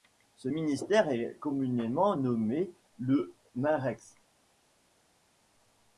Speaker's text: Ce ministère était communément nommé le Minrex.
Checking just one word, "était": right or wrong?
wrong